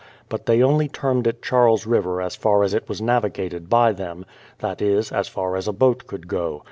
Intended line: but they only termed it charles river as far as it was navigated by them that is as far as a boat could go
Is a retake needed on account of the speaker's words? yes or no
no